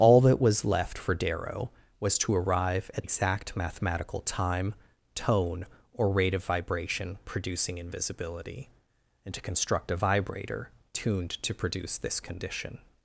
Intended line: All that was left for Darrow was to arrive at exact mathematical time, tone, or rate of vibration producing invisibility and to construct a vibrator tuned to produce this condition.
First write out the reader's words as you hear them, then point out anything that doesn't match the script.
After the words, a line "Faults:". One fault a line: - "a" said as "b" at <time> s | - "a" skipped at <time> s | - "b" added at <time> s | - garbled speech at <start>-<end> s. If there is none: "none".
All that was left for Darrow was to arrive at exact mathematical time, tone, or rate of vibration producing invisibility and to construct a vibrator tuned to produce this condition.
Faults:
none